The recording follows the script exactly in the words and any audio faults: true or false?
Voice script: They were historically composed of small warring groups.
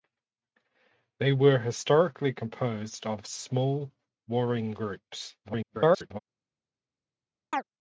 false